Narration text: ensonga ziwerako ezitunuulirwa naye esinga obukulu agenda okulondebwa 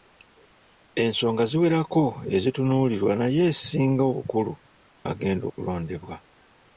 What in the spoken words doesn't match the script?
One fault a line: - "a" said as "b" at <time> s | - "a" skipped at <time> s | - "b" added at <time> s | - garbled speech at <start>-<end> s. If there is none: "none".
none